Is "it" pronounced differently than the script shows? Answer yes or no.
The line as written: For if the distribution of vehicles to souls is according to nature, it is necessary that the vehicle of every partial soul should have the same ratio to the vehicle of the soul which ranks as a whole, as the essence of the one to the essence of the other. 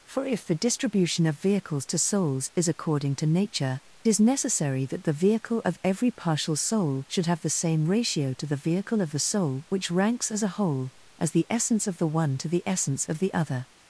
yes